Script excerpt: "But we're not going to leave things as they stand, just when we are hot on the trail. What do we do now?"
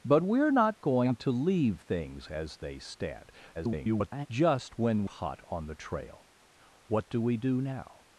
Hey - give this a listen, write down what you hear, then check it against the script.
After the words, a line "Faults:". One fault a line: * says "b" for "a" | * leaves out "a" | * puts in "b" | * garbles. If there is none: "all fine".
"But we're not going to leave things as they stand, [garbled] just when hot on the trail. What do we do now?"
Faults:
* garbles
* leaves out "we are"